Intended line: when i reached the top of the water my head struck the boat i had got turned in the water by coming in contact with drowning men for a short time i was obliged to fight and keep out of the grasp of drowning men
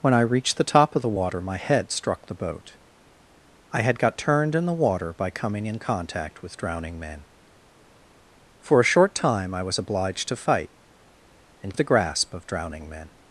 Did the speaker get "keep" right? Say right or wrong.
wrong